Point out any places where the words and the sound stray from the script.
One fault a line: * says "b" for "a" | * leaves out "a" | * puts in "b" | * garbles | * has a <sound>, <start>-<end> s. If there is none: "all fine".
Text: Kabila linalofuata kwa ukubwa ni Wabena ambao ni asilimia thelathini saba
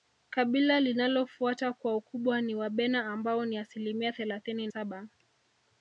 all fine